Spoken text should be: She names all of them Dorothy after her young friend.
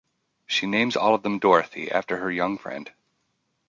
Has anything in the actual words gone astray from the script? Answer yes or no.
no